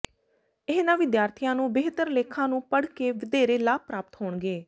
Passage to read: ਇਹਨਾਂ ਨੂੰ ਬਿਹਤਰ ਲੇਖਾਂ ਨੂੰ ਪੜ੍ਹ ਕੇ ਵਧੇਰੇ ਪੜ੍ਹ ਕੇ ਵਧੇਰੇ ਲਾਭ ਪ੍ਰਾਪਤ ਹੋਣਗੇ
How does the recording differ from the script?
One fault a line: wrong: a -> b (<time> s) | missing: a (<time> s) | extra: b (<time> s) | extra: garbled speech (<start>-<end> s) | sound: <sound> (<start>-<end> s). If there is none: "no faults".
extra: ਵਿਦਿਆਰਥੀਆਂ (1.0 s)
missing: ਪੜ੍ਹ ਕੇ ਵਧੇਰੇ (3.6 s)